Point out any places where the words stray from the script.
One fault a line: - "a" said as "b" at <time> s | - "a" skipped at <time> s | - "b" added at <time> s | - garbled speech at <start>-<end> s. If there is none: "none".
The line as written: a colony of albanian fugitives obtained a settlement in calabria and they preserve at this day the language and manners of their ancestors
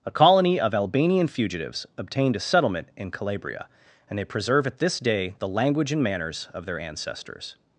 none